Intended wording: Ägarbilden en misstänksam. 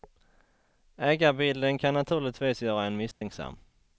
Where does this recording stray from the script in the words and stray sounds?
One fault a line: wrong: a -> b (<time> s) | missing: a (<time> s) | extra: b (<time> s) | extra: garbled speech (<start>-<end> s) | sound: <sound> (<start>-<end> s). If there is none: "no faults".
extra: kan naturligtvis göra (1.8 s)
sound: dropout (3.1-3.2 s)